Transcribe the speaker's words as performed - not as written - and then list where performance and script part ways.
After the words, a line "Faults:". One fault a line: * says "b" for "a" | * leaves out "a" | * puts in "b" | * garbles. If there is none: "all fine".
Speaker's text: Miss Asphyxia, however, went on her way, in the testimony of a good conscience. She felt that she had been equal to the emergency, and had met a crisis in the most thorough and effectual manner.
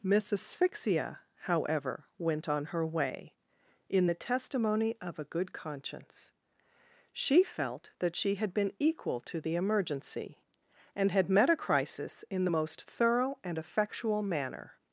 Miss Asphyxia, however, went on her way, in the testimony of a good conscience. She felt that she had been equal to the emergency, and had met a crisis in the most thorough and effectual manner.
Faults:
all fine